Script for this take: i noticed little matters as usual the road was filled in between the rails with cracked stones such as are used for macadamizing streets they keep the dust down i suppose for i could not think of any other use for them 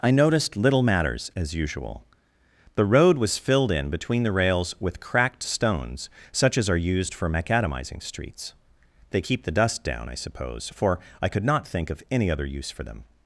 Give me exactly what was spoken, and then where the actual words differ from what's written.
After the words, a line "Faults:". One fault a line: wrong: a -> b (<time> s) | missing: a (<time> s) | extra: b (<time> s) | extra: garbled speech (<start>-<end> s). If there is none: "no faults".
i noticed little matters as usual the road was filled in between the rails with cracked stones such as are used for macadamizing streets they keep the dust down i suppose for i could not think of any other use for them
Faults:
no faults